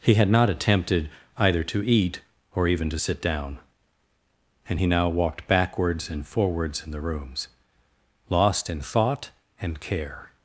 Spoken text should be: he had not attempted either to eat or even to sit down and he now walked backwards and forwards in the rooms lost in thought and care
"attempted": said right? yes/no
yes